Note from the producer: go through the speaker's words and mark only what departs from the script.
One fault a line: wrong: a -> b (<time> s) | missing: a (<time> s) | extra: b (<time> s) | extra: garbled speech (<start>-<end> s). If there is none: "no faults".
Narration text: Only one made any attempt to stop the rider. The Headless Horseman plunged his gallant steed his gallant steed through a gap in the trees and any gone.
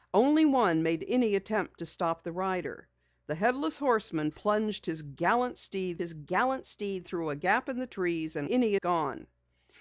no faults